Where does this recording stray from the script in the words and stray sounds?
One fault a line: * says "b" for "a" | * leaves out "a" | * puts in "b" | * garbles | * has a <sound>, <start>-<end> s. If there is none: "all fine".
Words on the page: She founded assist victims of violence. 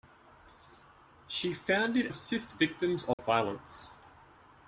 * has a dropout, 3.1-3.2 s